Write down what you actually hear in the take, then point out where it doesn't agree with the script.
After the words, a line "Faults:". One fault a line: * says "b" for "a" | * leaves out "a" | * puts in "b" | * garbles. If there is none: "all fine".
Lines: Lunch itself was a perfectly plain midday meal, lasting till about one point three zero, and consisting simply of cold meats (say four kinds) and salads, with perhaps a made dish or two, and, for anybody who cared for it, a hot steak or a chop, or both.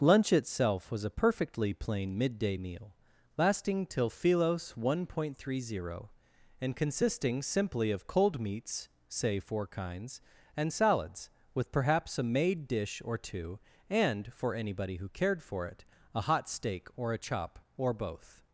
Lunch itself was a perfectly plain midday meal, lasting till philos one point three zero, and consisting simply of cold meats (say four kinds) and salads, with perhaps a made dish or two, and, for anybody who cared for it, a hot steak or a chop, or both.
Faults:
* says "philos" for "about"